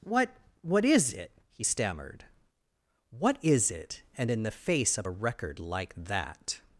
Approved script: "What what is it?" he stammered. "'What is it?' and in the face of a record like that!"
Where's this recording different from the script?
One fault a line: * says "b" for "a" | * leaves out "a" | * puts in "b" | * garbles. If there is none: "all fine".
all fine